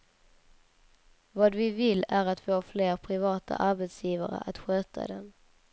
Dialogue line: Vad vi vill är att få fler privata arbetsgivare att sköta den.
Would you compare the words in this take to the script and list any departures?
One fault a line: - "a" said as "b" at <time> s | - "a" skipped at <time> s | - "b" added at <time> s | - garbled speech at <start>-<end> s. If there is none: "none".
none